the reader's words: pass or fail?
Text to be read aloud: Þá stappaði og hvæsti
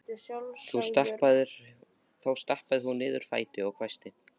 fail